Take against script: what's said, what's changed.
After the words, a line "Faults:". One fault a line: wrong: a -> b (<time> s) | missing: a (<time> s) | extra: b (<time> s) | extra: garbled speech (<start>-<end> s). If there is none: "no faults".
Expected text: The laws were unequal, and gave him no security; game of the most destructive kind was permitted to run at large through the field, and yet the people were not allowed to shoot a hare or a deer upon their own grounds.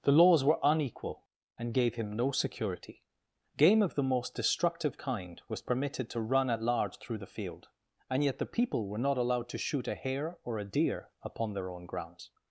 The laws were unequal, and gave him no security; game of the most destructive kind was permitted to run at large through the field, and yet the people were not allowed to shoot a hare or a deer upon their own grounds.
Faults:
no faults